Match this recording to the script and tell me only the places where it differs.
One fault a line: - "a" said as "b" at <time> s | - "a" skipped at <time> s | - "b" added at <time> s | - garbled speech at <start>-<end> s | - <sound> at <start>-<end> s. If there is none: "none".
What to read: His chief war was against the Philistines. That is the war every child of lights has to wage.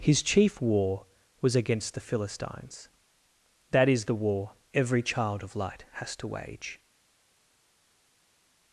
- "lights" said as "light" at 5.5 s